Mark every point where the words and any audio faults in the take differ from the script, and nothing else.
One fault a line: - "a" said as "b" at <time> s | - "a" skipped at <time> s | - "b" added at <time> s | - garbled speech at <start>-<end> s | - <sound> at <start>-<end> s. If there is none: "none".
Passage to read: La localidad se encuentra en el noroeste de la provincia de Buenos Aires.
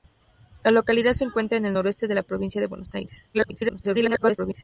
- garbled speech at 3.3-4.6 s